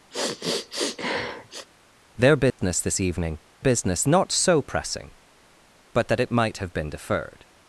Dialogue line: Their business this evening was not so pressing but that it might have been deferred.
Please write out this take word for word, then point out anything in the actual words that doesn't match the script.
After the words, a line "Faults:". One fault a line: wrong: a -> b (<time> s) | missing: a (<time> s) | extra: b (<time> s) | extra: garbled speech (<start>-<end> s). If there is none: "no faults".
Their business this evening business not so pressing but that it might have been deferred.
Faults:
wrong: was -> business (3.6 s)